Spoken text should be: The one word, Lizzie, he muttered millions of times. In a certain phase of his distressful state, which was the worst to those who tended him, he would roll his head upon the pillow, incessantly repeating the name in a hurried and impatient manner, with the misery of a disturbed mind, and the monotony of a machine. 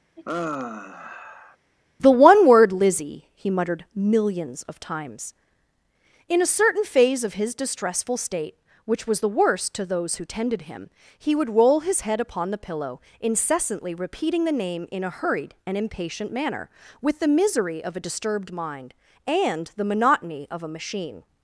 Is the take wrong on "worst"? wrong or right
right